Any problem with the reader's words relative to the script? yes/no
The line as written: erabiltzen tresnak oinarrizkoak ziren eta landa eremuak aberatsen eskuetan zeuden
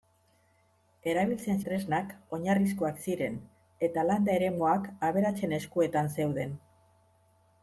no